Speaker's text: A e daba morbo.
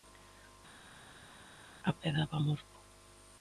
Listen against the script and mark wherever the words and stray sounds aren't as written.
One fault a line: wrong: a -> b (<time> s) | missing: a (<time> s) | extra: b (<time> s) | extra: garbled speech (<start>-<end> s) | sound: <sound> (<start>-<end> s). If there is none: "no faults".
no faults